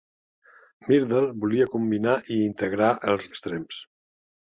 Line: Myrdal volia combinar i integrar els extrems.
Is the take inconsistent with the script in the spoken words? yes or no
no